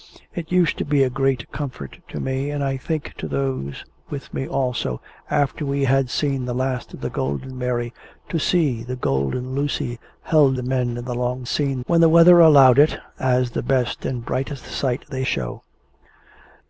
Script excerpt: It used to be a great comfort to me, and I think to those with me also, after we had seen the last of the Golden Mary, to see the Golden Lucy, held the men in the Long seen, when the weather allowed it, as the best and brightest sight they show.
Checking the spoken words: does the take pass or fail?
pass